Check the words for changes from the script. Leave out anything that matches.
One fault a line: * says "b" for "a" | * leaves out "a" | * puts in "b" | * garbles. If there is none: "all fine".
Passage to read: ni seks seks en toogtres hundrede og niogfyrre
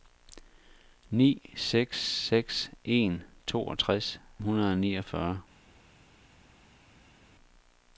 all fine